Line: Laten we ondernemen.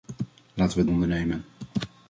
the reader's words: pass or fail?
pass